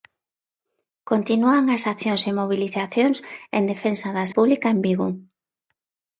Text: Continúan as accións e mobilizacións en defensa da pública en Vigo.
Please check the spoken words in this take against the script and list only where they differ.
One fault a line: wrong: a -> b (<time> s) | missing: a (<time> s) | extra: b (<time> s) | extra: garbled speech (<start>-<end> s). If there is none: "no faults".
no faults